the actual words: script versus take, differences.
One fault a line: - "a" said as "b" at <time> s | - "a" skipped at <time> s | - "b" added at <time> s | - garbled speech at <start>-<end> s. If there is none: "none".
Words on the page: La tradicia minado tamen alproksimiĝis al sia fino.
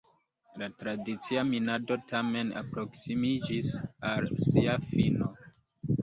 none